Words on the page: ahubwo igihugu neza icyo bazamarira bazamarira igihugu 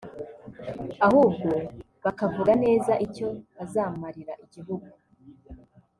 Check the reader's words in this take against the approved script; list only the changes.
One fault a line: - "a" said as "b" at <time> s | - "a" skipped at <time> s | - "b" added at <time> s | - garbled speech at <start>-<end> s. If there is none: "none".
- "igihugu" said as "bakavuga" at 2.0 s
- "bazamarira" skipped at 4.3 s